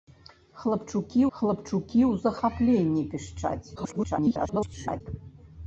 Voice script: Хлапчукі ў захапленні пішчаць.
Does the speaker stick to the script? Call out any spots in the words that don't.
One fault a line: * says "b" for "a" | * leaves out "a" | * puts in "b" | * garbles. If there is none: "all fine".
* puts in "хлапчукі"
* garbles